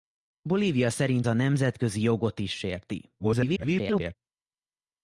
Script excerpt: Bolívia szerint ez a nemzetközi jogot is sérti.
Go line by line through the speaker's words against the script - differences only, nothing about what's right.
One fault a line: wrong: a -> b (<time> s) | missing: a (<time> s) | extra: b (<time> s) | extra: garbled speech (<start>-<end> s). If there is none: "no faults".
missing: ez (1.3 s)
extra: garbled speech (3.2-4.2 s)